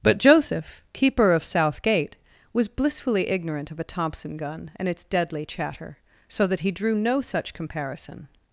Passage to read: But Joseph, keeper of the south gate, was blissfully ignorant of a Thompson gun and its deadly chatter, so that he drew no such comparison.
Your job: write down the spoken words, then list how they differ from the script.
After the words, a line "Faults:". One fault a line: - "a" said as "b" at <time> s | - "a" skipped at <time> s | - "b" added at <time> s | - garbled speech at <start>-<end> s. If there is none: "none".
But Joseph, keeper of south gate, was blissfully ignorant of a Thompson gun and its deadly chatter, so that he drew no such comparison.
Faults:
- "the" skipped at 1.4 s